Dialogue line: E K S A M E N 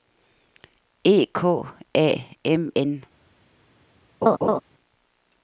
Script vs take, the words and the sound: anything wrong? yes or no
yes